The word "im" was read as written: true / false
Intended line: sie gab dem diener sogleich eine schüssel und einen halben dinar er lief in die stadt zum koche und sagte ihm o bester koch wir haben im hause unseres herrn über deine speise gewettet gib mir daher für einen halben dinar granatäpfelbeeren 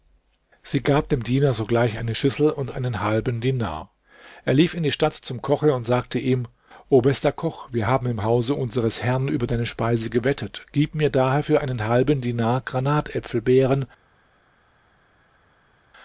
true